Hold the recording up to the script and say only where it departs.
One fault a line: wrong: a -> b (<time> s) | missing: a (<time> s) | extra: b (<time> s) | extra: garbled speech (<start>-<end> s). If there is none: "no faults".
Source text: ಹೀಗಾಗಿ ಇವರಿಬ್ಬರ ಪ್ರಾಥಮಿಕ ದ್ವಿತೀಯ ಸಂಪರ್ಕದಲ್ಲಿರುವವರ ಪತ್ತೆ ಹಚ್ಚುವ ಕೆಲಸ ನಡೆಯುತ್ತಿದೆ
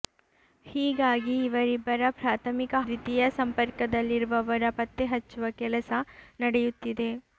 no faults